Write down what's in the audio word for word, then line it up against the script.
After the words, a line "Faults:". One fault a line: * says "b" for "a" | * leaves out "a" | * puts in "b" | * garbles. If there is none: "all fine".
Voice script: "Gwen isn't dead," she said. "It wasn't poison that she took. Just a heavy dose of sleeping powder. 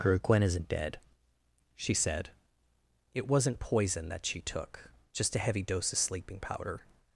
her "Gwen isn't dead," she said. "It wasn't poison that she took. Just a heavy dose of sleeping powder.
Faults:
* puts in "her"